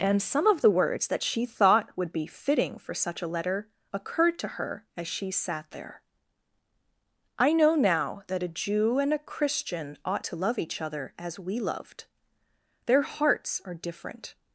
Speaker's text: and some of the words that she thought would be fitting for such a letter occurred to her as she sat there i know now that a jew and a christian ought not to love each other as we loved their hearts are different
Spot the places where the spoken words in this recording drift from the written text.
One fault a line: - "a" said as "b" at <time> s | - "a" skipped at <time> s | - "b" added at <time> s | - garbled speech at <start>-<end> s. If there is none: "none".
- "not" skipped at 10.2 s